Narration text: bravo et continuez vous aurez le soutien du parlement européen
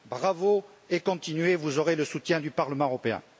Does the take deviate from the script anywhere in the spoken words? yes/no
no